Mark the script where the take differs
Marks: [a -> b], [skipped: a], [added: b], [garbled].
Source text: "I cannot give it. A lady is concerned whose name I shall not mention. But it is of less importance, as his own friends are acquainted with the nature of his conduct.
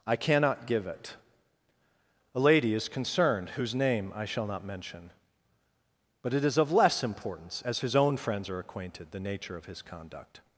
"I cannot give it. A lady is concerned whose name I shall not mention. But it is of less importance, as his own friends are acquainted [skipped: with] the nature of his conduct.